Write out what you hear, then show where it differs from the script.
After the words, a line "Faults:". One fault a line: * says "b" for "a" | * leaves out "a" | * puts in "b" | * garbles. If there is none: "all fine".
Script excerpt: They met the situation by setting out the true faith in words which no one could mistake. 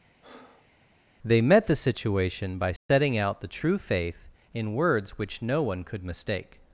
They met the situation by setting out the true faith in words which no one could mistake.
Faults:
all fine